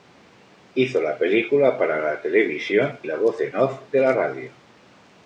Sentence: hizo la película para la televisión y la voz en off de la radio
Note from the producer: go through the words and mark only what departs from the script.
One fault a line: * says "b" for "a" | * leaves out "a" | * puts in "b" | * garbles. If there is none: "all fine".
* leaves out "y"